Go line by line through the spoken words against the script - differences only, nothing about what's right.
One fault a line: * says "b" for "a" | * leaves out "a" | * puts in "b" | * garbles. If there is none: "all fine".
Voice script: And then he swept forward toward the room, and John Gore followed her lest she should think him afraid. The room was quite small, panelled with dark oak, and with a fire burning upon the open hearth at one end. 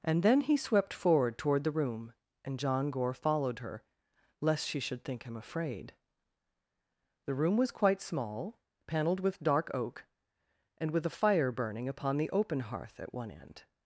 all fine